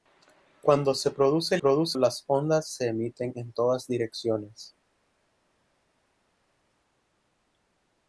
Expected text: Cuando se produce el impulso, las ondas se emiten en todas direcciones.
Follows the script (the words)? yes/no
no